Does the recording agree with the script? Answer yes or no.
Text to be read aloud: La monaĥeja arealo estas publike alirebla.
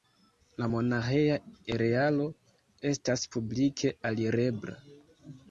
yes